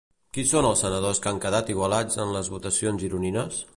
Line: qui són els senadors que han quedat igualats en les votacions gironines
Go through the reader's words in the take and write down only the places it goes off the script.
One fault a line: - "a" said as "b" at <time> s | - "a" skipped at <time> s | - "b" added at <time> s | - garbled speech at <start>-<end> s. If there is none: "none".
none